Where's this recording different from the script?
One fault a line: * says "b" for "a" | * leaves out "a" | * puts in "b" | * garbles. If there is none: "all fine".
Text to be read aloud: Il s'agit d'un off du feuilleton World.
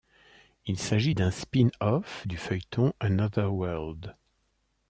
* puts in "spin"
* puts in "Another"